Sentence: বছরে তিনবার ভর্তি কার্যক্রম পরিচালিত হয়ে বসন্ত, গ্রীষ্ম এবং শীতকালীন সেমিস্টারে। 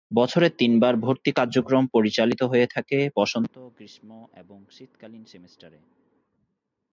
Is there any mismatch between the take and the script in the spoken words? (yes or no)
yes